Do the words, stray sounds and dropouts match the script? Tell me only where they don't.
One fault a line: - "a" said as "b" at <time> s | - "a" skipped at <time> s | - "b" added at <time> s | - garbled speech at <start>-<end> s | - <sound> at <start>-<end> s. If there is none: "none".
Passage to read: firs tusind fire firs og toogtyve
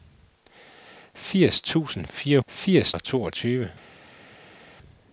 none